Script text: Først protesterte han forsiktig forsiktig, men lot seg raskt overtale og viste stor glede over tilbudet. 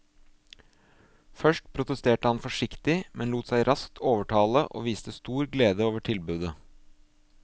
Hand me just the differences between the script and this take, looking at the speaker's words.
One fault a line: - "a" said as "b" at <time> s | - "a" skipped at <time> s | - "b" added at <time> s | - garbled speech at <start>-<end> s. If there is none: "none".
- "forsiktig" skipped at 3.0 s